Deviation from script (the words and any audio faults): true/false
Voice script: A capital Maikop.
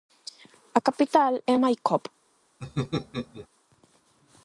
true